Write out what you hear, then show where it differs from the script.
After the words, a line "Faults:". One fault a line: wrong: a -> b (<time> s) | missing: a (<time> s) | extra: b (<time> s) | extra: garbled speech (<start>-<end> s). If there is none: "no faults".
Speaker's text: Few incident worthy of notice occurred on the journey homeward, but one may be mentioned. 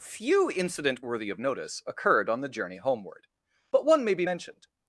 Few incident worthy of notice occurred on the journey homeward, but one may be mentioned.
Faults:
no faults